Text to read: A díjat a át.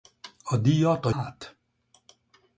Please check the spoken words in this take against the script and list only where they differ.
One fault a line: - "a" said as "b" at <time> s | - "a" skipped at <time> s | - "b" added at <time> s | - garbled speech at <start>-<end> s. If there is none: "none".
none